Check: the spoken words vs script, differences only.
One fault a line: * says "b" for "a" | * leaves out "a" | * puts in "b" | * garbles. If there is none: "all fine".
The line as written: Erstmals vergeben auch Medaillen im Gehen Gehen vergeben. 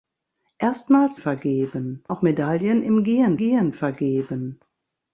all fine